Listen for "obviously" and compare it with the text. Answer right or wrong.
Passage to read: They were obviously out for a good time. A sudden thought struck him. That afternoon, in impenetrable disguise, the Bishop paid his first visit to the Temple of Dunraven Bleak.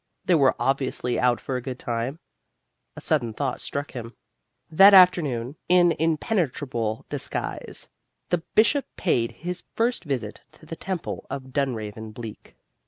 right